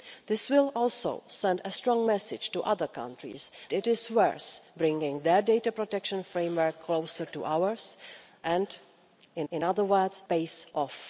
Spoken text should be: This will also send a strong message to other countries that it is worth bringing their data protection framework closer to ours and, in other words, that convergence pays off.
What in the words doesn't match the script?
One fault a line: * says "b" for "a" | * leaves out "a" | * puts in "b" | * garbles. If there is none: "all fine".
* leaves out "that"
* puts in "in"
* leaves out "that convergence"